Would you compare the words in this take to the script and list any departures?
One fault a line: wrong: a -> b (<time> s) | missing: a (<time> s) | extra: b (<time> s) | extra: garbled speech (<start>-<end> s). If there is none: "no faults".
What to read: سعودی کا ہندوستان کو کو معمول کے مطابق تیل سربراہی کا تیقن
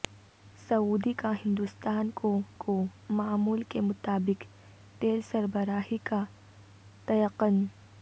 no faults